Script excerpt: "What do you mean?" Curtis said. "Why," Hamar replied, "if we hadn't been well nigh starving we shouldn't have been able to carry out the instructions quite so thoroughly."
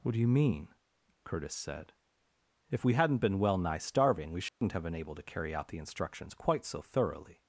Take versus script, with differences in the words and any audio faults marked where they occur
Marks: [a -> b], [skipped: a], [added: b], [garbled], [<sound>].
"What do you mean?" Curtis said. [skipped: "Why," Hamar replied,] "if we hadn't been well nigh starving we shouldn't [dropout] have been able to carry out the instructions quite so thoroughly."